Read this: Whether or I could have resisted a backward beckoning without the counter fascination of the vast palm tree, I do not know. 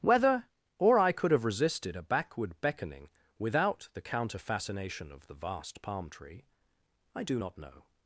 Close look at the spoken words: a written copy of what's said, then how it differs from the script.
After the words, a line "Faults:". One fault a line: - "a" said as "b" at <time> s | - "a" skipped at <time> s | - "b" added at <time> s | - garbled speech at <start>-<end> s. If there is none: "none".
Whether or I could have resisted a backward beckoning without the counter fascination of the vast palm tree, I do not know.
Faults:
none